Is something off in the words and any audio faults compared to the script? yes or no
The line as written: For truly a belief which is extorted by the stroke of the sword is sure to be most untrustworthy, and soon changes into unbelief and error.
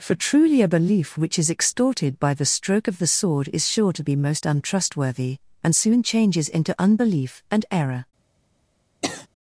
yes